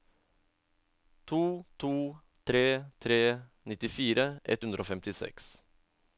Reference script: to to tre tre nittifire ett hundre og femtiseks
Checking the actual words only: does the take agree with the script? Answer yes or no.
yes